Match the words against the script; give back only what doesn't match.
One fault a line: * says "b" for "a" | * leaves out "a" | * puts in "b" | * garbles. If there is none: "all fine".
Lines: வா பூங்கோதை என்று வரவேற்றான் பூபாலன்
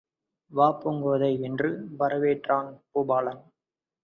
all fine